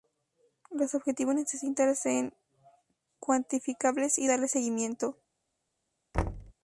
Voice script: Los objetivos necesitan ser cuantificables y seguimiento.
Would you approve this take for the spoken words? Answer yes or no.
no